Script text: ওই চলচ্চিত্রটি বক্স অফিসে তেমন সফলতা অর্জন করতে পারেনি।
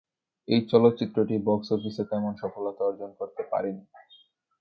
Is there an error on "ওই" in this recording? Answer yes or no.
yes